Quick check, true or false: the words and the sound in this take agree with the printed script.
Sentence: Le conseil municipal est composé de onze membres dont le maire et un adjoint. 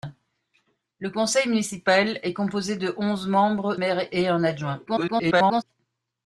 false